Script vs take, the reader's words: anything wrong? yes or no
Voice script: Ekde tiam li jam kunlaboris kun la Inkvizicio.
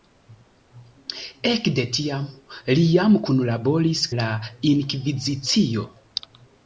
yes